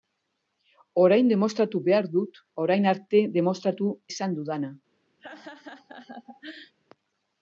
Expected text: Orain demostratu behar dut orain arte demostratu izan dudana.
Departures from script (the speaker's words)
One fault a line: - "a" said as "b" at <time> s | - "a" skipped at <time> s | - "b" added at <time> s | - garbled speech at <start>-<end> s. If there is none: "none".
none